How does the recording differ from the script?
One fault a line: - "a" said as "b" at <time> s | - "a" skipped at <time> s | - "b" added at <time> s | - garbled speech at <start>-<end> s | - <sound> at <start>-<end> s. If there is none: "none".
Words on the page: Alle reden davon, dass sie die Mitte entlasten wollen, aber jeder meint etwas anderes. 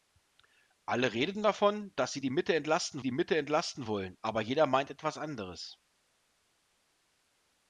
- "die Mitte entlasten" added at 3.0 s